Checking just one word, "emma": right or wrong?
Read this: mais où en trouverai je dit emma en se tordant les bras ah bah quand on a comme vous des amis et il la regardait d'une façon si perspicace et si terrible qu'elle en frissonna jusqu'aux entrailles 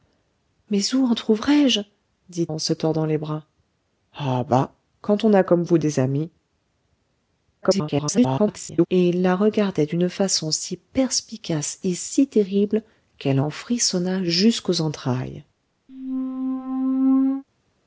wrong